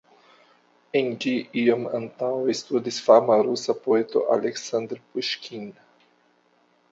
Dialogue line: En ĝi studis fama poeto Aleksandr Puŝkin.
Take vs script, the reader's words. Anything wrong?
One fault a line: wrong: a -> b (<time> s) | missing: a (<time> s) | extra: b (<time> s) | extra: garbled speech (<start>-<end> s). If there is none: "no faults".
extra: iom antaŭe (1.6 s)
extra: rusa (3.5 s)